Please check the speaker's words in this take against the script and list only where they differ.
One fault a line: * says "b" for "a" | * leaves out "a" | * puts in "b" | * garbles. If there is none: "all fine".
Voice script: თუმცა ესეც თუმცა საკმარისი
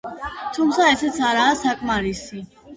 * says "არაა" for "თუმცა"